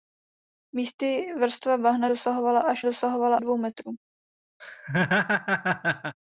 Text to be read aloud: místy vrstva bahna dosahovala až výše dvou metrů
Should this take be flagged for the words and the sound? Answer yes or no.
yes